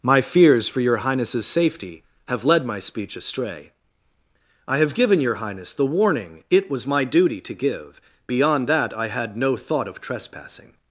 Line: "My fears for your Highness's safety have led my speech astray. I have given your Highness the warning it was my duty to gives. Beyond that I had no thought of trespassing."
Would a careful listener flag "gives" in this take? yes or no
yes